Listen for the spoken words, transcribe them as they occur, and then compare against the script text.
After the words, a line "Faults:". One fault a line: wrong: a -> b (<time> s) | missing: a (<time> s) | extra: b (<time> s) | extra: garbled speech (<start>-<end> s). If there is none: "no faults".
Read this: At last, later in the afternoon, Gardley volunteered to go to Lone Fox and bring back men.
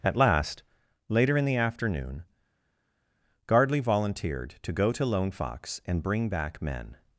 At last, later in the afternoon, Gardley volunteered to go to Lone Fox and bring back men.
Faults:
no faults